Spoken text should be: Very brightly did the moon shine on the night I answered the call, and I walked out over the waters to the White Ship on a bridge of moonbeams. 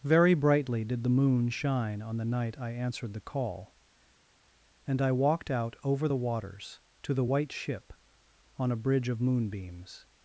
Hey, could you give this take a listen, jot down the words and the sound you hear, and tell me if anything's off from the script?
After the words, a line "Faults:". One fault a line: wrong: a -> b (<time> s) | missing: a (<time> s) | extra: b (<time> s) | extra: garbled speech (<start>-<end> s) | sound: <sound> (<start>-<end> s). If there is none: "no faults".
Very brightly did the moon shine on the night I answered the call, and I walked out over the waters to the White Ship on a bridge of moonbeams.
Faults:
no faults